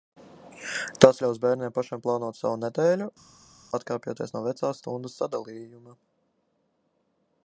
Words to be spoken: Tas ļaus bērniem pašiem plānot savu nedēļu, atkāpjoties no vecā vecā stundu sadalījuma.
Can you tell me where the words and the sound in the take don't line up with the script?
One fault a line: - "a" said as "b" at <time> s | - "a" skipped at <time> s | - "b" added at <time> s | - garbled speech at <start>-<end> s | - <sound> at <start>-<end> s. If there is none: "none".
- "vecā" skipped at 4.7 s